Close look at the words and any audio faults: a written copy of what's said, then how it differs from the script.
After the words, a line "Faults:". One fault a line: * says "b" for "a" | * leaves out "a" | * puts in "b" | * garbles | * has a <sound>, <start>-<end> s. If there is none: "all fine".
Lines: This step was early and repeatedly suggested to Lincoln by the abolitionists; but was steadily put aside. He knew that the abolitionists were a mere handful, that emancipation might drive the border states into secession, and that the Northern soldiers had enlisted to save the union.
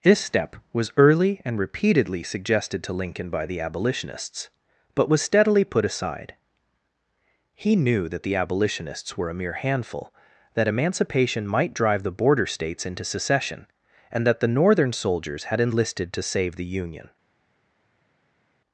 This step was early and repeatedly suggested to Lincoln by the abolitionists; but was steadily put aside. He knew that the abolitionists were a mere handful, that emancipation might drive the border states into secession, and that the Northern soldiers had enlisted to save the union.
Faults:
all fine